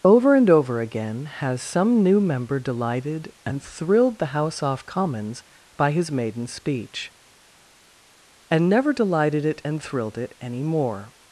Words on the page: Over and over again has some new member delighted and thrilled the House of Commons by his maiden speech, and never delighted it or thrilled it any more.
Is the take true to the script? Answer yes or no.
no